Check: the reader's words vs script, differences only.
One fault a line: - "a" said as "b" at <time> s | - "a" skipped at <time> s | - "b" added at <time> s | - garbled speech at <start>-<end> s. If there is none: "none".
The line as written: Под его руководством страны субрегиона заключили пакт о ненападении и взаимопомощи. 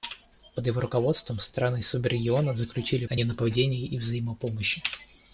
- "пакт" skipped at 3.0 s